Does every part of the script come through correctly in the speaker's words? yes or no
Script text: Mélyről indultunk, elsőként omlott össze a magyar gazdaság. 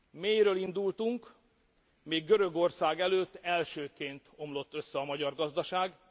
no